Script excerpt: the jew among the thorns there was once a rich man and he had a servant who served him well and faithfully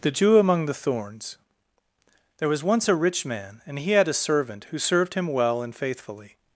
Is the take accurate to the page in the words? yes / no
yes